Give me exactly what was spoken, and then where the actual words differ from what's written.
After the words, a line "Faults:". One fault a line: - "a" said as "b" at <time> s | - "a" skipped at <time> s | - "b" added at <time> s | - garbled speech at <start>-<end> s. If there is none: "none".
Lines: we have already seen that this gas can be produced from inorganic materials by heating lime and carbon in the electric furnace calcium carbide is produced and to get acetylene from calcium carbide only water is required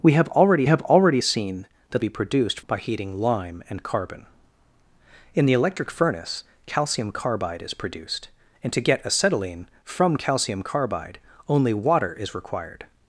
we have already have already seen that be produced by heating lime and carbon in the electric furnace calcium carbide is produced and to get acetylene from calcium carbide only water is required
Faults:
- "have already" added at 0.7 s
- "this gas can" skipped at 2.0 s
- "from inorganic materials" skipped at 2.6 s